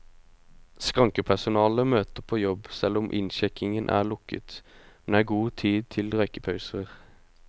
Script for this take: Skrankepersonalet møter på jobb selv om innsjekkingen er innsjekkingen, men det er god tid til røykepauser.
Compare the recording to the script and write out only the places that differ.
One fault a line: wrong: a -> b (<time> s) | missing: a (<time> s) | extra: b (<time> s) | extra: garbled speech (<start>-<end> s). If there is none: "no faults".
wrong: innsjekkingen -> lukket (4.1 s)